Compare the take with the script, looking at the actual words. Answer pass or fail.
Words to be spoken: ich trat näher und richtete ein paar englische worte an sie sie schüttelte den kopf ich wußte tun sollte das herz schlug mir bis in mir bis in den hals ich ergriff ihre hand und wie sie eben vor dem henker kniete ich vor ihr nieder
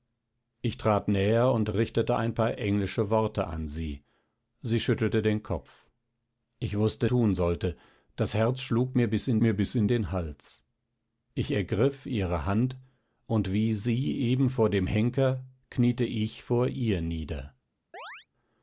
pass